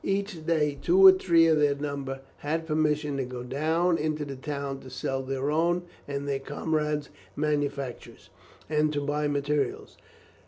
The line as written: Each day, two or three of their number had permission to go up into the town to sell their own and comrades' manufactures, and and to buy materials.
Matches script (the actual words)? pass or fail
fail